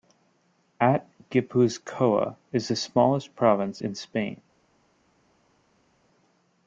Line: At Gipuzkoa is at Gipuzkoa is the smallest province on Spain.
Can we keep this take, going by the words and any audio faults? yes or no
no